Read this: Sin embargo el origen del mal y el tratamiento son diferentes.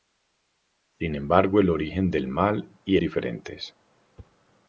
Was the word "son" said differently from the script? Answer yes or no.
yes